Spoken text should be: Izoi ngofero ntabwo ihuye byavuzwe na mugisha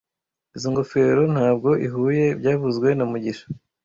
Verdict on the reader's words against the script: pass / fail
pass